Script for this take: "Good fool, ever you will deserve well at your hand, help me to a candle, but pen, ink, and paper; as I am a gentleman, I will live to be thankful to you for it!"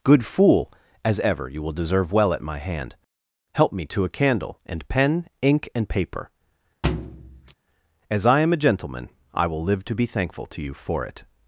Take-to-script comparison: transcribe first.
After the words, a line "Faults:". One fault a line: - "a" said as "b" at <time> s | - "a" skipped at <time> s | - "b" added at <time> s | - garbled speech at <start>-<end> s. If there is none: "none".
"Good fool, as ever you will deserve well at my hand, help me to a candle, and pen, ink, and paper; as I am a gentleman, I will live to be thankful to you for it!"
Faults:
- "as" added at 1.1 s
- "your" said as "my" at 2.4 s
- "but" said as "and" at 4.7 s